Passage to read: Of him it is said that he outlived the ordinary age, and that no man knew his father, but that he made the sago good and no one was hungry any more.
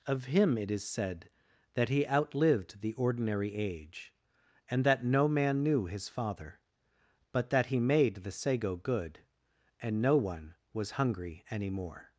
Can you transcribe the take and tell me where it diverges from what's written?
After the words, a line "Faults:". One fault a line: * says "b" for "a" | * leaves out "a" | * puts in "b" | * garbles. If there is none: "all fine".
Of him it is said that he outlived the ordinary age, and that no man knew his father, but that he made the sago good and no one was hungry any more.
Faults:
all fine